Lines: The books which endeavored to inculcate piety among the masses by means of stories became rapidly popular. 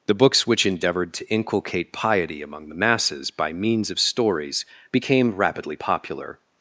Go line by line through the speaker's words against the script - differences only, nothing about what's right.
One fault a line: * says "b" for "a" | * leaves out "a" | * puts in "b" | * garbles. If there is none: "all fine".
all fine